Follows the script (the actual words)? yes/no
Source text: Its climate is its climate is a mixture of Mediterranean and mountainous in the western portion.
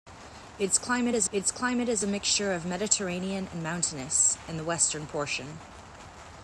yes